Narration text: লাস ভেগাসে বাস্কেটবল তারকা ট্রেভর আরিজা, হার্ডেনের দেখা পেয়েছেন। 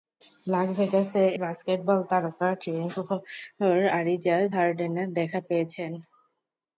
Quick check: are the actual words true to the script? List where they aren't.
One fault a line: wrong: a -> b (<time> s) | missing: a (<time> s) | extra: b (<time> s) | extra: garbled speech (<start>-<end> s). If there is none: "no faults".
no faults